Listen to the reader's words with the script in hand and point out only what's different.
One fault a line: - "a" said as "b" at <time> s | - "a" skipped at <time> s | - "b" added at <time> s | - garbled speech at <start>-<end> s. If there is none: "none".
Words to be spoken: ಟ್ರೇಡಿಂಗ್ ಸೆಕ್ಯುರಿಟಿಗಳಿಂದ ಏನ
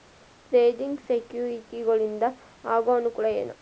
- "ಆಗೋ ಅನುಕೂಲ" added at 2.7 s